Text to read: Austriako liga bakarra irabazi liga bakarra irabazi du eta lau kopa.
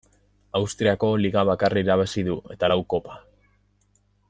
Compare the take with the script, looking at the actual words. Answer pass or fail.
fail